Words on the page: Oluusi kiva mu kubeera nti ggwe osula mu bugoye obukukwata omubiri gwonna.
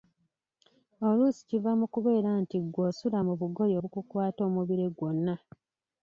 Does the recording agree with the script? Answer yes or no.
yes